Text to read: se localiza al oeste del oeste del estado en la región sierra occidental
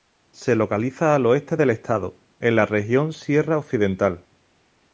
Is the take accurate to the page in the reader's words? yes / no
no